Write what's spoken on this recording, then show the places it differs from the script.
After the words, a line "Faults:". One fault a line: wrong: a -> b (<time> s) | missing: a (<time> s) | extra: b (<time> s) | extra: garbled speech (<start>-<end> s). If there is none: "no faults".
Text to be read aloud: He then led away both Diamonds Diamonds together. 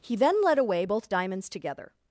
He then led away both Diamonds together.
Faults:
missing: Diamonds (1.5 s)